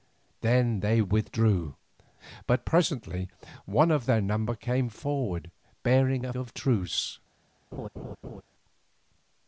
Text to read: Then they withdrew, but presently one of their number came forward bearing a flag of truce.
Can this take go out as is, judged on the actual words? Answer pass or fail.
fail